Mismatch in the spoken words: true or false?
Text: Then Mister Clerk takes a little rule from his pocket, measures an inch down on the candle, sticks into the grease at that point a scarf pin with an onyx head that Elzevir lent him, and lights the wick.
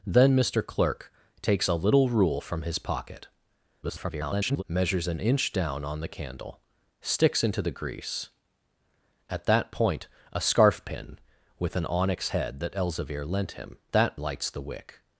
true